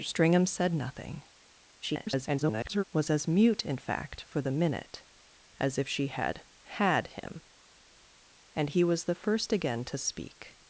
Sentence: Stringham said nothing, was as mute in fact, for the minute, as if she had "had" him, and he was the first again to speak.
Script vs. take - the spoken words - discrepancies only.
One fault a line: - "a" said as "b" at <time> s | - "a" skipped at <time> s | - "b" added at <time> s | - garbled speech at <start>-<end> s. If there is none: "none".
- garbled speech at 1.8-2.8 s